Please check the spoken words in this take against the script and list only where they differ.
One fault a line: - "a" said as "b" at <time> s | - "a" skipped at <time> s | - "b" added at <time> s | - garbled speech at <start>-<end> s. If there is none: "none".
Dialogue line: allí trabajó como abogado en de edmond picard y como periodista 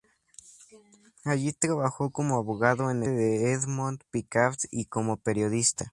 none